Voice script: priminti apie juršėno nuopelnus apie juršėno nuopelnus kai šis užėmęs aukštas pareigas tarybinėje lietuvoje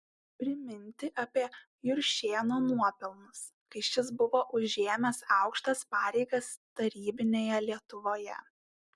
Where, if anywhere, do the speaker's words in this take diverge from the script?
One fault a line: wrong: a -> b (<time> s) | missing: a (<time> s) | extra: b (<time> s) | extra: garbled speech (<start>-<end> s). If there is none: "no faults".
missing: apie juršėno nuopelnus (3.4 s)
extra: buvo (4.2 s)